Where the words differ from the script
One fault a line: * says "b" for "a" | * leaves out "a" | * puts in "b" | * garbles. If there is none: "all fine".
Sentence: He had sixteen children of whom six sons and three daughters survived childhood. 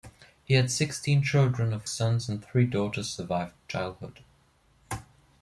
* leaves out "whom six"